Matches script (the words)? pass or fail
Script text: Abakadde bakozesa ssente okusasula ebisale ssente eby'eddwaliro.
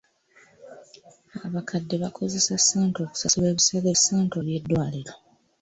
pass